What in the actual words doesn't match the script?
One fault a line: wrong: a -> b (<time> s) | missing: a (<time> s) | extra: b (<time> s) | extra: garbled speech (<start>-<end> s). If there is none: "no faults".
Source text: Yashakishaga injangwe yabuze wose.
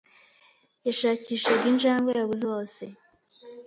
no faults